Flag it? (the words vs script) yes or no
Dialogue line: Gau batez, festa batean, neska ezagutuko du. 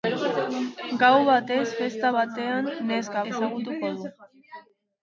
no